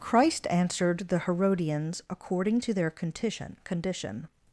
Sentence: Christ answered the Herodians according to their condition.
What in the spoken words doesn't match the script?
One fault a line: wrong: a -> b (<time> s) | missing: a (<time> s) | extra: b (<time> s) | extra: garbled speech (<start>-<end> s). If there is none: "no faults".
extra: condition (3.6 s)